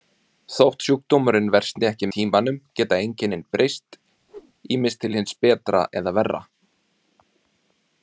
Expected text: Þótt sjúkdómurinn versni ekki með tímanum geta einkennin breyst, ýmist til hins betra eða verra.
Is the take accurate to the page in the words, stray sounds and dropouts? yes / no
no